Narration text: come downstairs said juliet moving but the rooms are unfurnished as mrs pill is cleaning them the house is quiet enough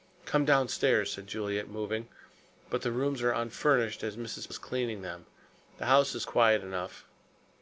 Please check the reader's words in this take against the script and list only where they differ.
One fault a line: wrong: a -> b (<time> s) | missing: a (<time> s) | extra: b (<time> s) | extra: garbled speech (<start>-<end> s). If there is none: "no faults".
missing: pill (4.5 s)